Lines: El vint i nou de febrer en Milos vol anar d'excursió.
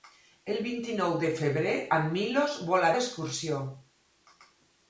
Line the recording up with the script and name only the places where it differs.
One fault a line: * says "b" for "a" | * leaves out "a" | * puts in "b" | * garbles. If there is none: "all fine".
* leaves out "anar"